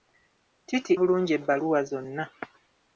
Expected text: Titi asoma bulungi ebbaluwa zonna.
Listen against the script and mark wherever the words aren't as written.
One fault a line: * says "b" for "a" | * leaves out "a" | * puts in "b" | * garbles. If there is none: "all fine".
* leaves out "asoma"